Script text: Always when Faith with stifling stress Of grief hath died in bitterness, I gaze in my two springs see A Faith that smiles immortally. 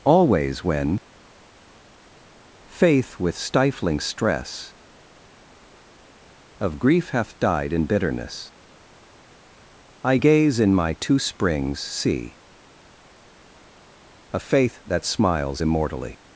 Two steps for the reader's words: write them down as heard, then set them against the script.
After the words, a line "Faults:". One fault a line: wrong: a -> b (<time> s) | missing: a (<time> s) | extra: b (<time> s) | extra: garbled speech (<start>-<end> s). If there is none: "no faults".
Always when Faith with stifling stress Of grief hath died in bitterness, I gaze in my two springs see A Faith that smiles immortally.
Faults:
no faults